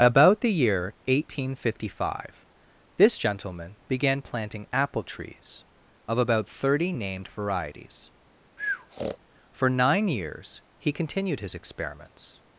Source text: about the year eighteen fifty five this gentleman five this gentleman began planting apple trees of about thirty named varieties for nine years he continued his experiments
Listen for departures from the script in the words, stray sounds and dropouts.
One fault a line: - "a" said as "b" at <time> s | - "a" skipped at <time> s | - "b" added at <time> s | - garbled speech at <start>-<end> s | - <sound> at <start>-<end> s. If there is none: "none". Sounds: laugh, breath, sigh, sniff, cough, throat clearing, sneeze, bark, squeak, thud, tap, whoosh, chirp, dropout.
- "five this gentleman" skipped at 3.8 s
- breath at 8.6-9.2 s